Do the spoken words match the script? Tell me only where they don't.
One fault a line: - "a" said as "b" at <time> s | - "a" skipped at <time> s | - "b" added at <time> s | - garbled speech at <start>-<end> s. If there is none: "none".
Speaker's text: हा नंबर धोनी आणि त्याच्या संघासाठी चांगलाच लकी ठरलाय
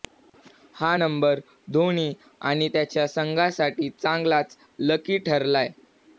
none